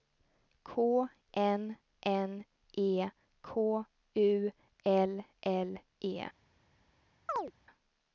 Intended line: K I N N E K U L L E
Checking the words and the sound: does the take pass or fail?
fail